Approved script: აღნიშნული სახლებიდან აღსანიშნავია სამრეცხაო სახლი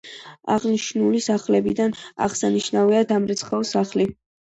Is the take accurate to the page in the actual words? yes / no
yes